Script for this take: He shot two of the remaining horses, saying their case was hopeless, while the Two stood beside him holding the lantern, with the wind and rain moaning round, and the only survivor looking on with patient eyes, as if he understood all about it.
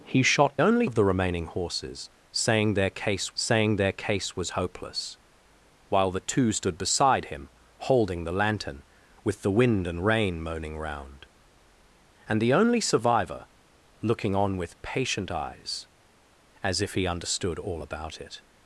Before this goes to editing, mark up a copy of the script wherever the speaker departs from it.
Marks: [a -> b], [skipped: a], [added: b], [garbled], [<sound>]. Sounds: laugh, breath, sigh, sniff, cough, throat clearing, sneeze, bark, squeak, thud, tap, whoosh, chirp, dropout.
He shot [two -> only] of the remaining horses, saying their case [added: saying their case] was hopeless, while the Two stood beside him holding the lantern, with the wind and rain moaning round, and the only survivor looking on with patient eyes, as if he understood all about it.